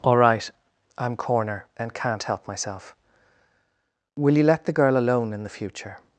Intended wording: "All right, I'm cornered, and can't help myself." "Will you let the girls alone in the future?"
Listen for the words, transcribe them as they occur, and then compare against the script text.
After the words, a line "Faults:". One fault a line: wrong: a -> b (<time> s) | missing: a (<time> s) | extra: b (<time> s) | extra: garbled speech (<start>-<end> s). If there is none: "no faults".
"All right, I'm corner, and can't help myself." "Will you let the girl alone in the future?"
Faults:
wrong: cornered -> corner (1.1 s)
wrong: girls -> girl (4.7 s)